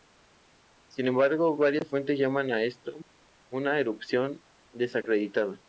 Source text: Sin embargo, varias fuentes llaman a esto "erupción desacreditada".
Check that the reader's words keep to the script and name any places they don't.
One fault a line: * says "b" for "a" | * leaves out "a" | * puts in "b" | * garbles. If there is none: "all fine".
* puts in "una"